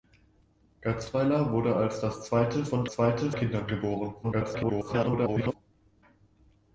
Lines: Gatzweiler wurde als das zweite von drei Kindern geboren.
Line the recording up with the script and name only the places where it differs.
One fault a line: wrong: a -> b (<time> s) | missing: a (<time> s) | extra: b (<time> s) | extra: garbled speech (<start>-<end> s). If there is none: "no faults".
wrong: drei -> zweite (2.9 s)
extra: garbled speech (4.2-5.5 s)